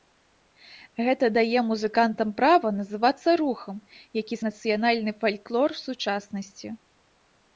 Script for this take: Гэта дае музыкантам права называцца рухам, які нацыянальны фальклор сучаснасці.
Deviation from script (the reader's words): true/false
false